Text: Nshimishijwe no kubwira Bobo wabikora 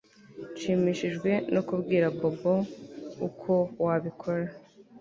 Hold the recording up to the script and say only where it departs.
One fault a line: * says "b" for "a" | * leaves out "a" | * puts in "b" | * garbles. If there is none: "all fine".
* puts in "uko"